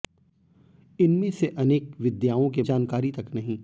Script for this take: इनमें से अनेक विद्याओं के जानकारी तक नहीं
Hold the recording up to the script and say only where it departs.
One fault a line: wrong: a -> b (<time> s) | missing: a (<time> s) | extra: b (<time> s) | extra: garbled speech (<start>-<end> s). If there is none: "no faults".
no faults